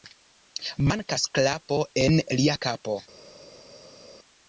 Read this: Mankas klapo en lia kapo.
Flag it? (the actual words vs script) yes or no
no